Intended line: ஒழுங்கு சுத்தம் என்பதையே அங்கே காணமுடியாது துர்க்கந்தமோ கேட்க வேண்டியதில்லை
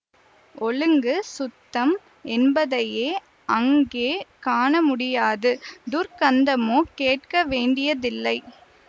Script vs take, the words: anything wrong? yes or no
no